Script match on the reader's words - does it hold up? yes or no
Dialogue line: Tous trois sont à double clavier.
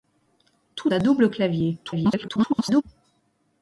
no